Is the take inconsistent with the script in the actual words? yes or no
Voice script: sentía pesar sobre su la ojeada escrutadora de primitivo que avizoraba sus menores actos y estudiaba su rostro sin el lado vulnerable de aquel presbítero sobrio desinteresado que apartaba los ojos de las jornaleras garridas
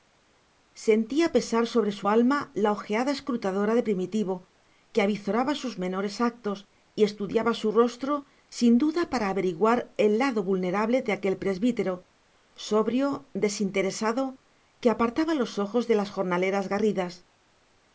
yes